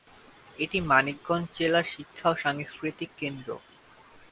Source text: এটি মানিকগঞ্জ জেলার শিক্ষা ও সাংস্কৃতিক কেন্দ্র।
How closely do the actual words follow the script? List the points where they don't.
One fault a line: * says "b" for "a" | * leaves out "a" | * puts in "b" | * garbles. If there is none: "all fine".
all fine